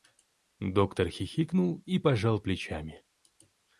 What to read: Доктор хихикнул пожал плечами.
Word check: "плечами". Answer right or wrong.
right